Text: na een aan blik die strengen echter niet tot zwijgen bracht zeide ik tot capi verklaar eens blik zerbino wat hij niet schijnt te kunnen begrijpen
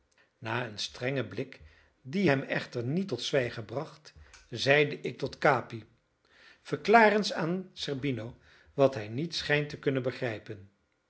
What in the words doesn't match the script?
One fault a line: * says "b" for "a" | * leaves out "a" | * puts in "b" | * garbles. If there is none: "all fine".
* says "strengen" for "aan"
* says "hem" for "strengen"
* says "aan" for "blik"